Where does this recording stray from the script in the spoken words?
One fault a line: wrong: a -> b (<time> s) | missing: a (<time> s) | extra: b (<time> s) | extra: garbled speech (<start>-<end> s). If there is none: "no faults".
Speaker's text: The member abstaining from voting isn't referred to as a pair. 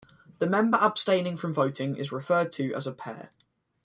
wrong: isn't -> is (1.9 s)